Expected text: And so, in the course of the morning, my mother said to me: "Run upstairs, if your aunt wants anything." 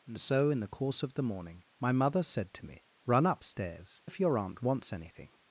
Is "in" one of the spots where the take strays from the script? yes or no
no